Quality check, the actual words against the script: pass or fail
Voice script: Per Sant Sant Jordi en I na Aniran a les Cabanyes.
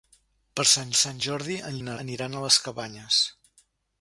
pass